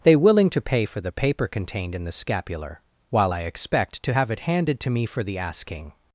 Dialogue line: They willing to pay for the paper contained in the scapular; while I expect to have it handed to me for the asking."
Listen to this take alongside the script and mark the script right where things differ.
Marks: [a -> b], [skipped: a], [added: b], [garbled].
They willing to pay for the paper contained in the scapular; while I expect to have it handed to me for the asking."